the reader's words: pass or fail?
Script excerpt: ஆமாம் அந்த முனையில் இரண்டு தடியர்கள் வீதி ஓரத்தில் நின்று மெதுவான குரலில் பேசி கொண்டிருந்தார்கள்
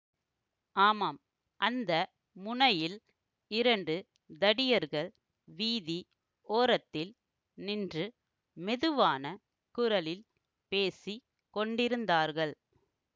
pass